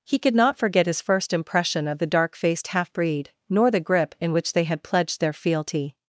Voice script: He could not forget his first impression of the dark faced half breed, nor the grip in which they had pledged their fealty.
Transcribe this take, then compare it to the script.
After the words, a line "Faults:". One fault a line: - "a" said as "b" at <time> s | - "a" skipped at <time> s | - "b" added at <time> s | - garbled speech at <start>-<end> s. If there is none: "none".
He could not forget his first impression of the dark faced half breed, nor the grip in which they had pledged their fealty.
Faults:
none